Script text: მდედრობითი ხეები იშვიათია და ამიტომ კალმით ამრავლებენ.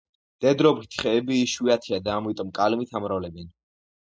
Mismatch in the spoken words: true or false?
false